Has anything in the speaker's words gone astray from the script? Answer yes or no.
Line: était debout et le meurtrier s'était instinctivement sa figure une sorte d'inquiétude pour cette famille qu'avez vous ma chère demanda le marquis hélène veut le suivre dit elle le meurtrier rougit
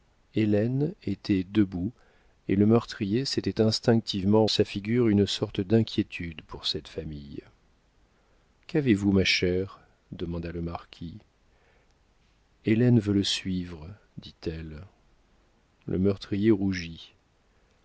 no